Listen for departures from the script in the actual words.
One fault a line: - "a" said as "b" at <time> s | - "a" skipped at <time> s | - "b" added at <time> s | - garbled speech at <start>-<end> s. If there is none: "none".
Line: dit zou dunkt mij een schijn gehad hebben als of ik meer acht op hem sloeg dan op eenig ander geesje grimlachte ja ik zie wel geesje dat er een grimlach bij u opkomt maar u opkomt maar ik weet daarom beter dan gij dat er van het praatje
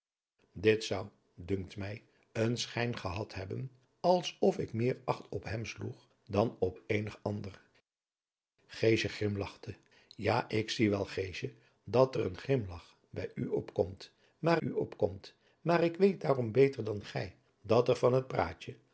none